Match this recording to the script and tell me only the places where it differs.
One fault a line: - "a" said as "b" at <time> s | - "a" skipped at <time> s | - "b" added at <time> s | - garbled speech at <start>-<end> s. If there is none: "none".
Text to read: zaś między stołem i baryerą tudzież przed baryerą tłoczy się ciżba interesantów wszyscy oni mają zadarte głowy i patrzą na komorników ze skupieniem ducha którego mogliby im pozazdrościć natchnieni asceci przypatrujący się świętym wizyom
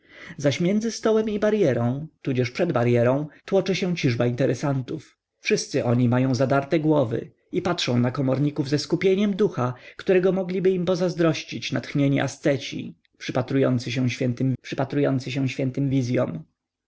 - "przypatrujący się świętym" added at 14.6 s